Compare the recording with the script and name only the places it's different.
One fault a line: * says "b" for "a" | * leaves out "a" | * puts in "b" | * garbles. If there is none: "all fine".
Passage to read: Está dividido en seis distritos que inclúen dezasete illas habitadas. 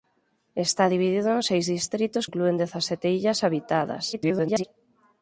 * leaves out "que"
* garbles